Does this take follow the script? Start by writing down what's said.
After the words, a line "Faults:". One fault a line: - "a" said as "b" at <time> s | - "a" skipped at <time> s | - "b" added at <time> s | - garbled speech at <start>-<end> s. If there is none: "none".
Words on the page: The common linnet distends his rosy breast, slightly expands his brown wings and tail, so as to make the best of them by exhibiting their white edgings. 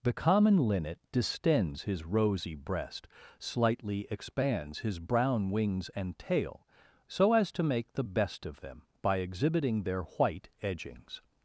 The common linnet distends his rosy breast, slightly expands his brown wings and tail, so as to make the best of them by exhibiting their white edgings.
Faults:
none